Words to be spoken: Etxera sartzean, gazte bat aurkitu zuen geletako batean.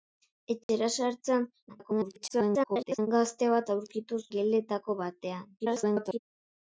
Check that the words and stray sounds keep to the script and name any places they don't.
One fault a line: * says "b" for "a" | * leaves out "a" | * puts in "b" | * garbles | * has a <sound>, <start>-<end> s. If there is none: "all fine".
* has a dropout, 0.6-0.7 s
* garbles
* leaves out "zuen"
* garbles